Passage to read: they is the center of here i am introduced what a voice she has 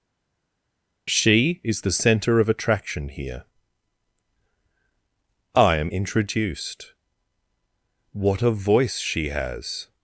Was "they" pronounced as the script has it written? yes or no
no